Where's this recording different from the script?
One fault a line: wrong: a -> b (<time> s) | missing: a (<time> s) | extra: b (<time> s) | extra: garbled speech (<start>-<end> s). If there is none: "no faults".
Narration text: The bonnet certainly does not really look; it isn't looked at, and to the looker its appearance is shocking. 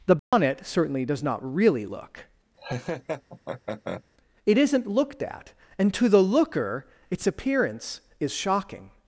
no faults